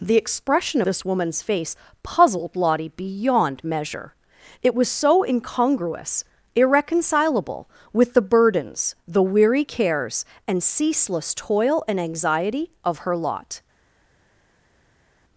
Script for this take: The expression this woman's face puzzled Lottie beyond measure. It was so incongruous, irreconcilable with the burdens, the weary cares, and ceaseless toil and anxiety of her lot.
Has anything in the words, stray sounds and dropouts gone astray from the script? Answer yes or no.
no